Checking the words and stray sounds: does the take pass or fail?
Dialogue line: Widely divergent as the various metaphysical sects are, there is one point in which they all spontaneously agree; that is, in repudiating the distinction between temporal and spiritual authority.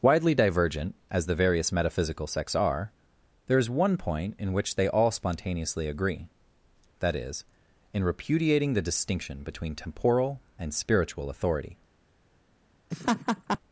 fail